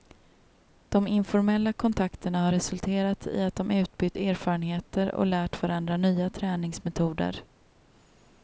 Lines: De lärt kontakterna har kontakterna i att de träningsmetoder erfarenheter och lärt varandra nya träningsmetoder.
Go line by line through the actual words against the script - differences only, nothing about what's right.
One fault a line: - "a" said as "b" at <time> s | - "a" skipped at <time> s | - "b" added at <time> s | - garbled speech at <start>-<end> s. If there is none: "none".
- "lärt" said as "informella" at 1.1 s
- "kontakterna" said as "resulterat" at 2.5 s
- "träningsmetoder" said as "utbytt" at 3.7 s